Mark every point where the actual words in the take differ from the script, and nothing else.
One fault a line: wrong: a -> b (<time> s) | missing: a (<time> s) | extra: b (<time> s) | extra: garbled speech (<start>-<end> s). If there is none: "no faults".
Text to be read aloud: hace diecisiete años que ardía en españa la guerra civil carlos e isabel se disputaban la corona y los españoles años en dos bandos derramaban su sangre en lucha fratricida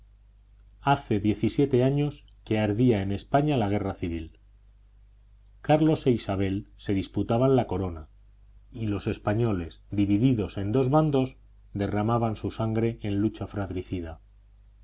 wrong: años -> divididos (9.9 s)